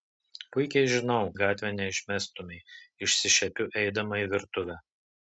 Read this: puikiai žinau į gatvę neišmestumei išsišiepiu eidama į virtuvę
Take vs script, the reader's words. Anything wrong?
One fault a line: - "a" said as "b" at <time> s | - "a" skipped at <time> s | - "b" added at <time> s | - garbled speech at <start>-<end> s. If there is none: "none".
none